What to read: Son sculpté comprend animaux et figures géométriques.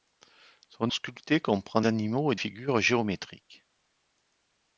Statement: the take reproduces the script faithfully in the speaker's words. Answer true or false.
true